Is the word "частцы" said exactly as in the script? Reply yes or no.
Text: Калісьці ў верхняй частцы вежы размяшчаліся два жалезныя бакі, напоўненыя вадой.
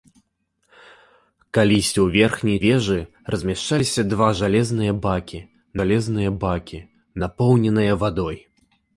no